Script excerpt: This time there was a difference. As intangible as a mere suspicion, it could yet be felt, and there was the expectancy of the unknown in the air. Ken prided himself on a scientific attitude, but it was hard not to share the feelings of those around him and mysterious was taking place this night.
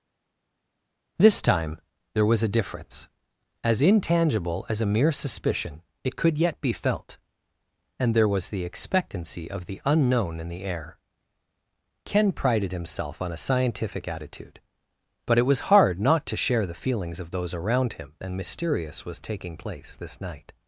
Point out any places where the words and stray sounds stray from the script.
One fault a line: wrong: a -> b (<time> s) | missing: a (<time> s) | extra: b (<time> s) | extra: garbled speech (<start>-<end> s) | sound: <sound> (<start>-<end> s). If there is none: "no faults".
no faults